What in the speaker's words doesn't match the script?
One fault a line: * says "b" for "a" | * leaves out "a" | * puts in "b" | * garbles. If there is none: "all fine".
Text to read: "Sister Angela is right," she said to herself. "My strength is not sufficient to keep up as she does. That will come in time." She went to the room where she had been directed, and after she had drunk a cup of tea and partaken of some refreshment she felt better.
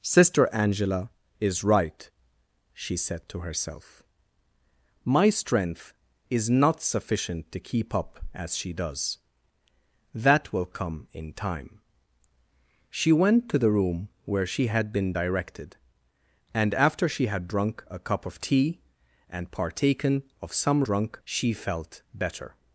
* says "drunk" for "refreshment"